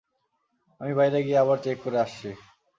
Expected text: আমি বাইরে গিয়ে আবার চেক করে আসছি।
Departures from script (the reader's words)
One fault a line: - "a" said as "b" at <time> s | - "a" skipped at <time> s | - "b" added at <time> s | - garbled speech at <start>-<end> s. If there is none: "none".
none